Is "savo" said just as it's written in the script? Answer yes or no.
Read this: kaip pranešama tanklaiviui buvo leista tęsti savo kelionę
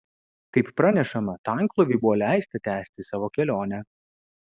yes